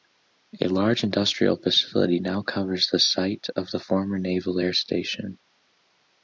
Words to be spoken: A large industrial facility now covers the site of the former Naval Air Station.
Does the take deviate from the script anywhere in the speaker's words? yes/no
no